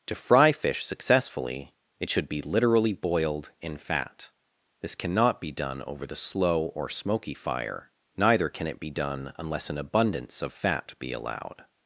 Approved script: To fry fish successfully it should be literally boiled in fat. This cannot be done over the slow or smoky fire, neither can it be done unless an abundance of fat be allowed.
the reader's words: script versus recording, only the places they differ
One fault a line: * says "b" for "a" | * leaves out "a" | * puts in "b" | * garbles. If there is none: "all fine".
all fine